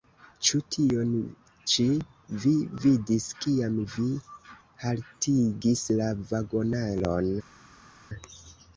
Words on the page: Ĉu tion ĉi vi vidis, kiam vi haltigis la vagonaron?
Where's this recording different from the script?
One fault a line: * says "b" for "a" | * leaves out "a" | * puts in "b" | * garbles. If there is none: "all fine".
all fine